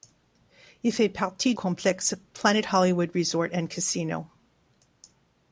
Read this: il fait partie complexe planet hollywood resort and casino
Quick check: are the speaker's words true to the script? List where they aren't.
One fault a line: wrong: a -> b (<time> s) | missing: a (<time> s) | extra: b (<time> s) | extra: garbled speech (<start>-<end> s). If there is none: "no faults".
no faults